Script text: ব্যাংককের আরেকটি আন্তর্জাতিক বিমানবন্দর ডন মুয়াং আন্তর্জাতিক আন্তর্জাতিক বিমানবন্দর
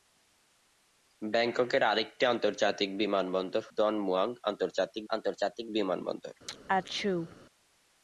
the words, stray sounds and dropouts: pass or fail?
fail